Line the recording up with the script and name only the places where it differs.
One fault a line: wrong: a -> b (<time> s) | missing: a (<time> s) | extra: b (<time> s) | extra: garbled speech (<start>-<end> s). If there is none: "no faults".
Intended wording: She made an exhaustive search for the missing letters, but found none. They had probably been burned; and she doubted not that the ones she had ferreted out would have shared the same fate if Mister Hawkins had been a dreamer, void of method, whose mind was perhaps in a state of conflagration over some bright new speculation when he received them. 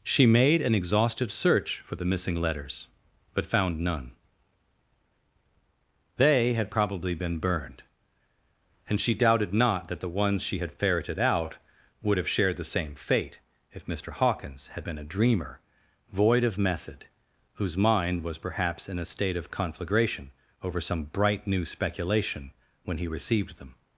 no faults